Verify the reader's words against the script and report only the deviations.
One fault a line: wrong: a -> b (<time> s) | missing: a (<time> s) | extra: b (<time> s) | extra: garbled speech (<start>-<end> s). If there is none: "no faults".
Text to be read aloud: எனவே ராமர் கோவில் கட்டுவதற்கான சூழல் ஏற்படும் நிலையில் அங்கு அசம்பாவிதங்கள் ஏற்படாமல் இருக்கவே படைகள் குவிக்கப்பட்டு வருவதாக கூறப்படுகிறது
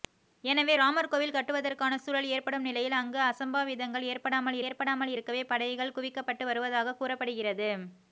extra: ஏற்படாமல் (4.7 s)